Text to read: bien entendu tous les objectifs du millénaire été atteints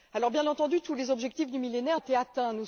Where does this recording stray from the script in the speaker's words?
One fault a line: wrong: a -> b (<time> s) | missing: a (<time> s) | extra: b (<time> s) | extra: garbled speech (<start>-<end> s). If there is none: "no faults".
no faults